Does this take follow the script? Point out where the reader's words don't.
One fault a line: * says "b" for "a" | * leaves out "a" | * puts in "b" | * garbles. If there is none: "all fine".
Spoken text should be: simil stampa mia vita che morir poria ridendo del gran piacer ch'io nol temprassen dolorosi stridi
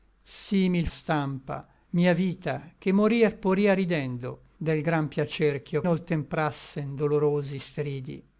all fine